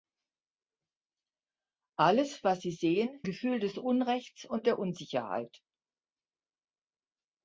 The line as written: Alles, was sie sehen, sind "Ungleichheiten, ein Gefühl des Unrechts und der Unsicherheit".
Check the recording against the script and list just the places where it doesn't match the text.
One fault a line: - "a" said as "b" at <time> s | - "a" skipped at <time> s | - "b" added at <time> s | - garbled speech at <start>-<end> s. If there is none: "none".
- "sind Ungleichheiten ein" skipped at 3.2 s